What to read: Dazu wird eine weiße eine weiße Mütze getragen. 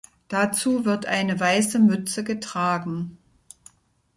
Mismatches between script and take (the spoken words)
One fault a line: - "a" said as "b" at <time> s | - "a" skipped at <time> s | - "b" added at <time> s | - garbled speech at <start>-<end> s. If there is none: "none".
- "eine weiße" skipped at 1.8 s